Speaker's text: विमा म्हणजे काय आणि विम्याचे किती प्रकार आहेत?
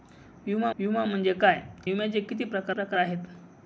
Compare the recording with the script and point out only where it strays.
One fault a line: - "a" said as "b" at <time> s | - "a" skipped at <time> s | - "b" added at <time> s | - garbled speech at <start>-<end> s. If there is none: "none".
- "विमा" added at 0.8 s
- "आणि" skipped at 1.6 s
- "प्रकार" added at 2.7 s